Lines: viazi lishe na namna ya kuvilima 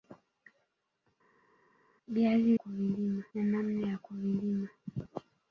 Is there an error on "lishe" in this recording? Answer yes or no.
yes